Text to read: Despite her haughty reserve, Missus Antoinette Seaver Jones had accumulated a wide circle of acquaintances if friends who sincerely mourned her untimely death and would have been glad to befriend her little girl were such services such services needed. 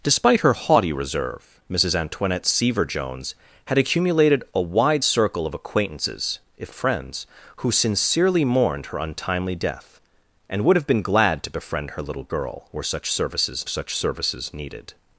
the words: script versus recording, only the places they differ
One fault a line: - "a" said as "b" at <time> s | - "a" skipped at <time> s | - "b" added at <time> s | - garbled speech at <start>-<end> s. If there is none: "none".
none